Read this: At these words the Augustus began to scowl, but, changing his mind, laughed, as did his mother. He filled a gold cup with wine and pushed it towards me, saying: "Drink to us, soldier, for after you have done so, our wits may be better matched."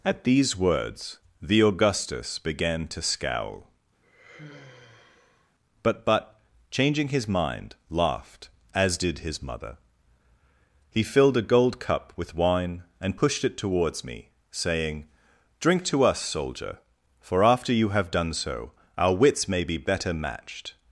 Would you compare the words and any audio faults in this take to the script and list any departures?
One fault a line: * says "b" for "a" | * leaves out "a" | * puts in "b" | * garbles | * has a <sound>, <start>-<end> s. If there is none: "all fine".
* has a sigh, 4.0-5.5 s
* puts in "but"